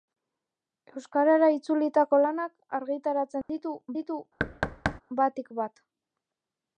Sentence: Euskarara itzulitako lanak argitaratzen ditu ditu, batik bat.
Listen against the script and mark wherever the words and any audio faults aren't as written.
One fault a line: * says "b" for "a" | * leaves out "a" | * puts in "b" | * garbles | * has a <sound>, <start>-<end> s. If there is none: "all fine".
* has a dropout, 3.4-3.5 s
* has a thud, 4.4-5.0 s